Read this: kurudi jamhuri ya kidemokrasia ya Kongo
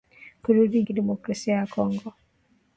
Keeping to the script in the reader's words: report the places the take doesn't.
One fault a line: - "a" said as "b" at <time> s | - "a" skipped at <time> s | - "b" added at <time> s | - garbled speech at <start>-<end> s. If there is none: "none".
- "jamhuri ya" skipped at 0.8 s